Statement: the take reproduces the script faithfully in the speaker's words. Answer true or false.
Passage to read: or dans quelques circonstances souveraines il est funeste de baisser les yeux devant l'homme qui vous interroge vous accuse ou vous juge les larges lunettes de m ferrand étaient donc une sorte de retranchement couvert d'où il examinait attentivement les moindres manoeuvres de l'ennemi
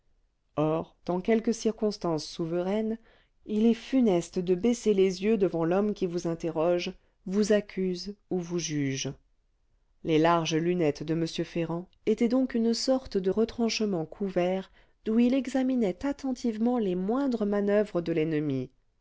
true